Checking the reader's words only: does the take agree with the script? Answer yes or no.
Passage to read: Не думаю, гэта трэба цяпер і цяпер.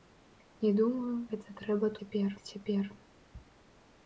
yes